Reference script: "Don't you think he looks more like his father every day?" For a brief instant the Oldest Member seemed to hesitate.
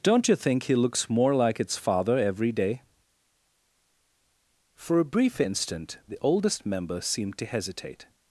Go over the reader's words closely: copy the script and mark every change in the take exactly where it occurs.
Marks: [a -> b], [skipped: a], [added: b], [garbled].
"Don't you think he looks more like [his -> its] father every day?" For a brief instant the Oldest Member seemed to hesitate.